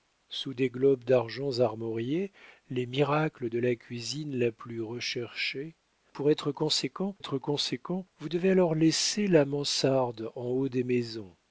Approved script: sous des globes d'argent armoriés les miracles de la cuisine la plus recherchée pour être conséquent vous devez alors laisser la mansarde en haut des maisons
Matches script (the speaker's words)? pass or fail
fail